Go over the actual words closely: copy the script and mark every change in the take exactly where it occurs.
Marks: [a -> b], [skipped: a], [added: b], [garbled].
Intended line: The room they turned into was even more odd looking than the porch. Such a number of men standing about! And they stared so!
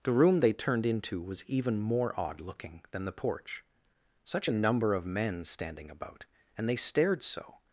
The room they turned into was even more odd looking than the porch. Such a number of men standing about! And they stared so!